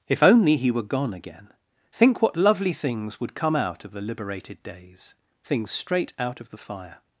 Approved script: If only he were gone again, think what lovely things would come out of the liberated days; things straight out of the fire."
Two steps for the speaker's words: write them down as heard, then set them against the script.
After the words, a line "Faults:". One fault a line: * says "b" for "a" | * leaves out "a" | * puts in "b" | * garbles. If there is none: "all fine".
If only he were gone again, think what lovely things would come out of the liberated days; things straight out of the fire."
Faults:
all fine